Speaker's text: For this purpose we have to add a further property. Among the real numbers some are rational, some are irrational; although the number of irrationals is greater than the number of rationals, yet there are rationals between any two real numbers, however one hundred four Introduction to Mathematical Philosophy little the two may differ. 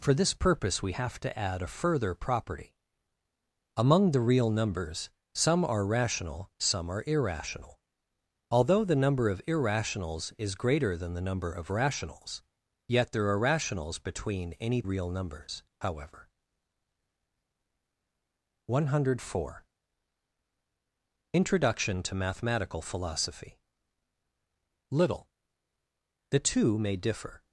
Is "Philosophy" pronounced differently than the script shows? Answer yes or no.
no